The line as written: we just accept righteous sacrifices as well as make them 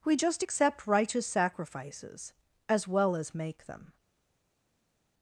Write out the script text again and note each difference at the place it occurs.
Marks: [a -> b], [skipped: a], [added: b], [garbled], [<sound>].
we just accept righteous sacrifices as well as make them